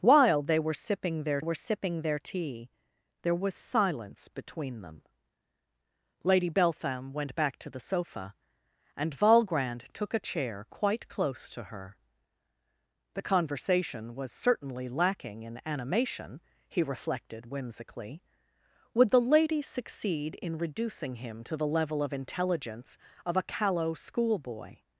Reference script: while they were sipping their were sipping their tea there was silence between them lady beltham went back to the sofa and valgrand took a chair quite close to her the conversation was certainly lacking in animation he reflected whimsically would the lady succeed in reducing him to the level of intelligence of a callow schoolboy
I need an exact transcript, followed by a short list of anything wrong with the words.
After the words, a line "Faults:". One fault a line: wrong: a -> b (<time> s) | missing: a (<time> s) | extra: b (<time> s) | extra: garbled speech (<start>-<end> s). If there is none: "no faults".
while they were sipping their were sipping their tea there was silence between them lady beltham went back to the sofa and valgrand took a chair quite close to her the conversation was certainly lacking in animation he reflected whimsically would the lady succeed in reducing him to the level of intelligence of a callow schoolboy
Faults:
no faults